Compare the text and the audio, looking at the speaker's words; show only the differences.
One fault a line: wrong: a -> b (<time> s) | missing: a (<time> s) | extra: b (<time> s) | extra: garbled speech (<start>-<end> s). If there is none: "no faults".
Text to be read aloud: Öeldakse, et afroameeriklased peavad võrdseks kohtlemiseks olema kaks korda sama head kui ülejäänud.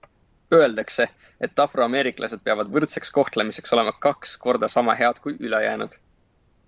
no faults